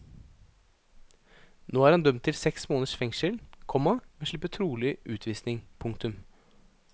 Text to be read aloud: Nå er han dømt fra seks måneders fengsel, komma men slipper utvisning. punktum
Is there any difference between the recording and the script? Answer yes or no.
yes